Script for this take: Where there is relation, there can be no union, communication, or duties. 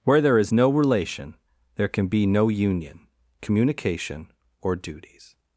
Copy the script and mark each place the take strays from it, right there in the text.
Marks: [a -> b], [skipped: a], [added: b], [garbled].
Where there is [added: no] relation, there can be no union, communication, or duties.